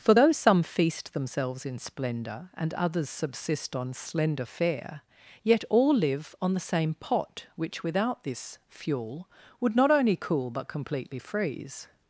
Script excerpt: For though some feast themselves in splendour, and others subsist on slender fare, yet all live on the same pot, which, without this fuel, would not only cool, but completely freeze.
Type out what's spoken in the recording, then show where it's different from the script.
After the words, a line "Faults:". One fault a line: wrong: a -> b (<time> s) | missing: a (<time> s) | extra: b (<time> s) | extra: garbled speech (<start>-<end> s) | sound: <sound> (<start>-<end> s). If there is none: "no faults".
For though some feast themselves in splendour, and others subsist on slender fare, yet all live on the same pot, which, without this fuel, would not only cool, but completely freeze.
Faults:
no faults